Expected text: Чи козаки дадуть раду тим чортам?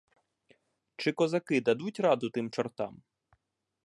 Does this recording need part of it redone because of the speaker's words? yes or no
no